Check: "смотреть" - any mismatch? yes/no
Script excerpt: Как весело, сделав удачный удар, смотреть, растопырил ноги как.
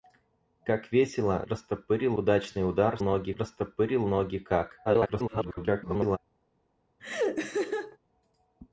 yes